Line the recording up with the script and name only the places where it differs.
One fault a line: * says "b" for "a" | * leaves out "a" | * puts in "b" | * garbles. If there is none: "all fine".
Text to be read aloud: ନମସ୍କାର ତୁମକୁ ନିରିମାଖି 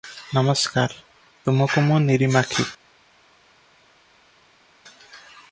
* puts in "ମୁଁ"